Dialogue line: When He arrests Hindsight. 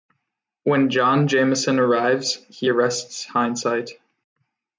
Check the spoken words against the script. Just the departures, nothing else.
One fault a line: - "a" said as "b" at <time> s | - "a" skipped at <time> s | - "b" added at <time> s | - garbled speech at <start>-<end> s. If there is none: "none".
- "John Jameson arrives" added at 0.9 s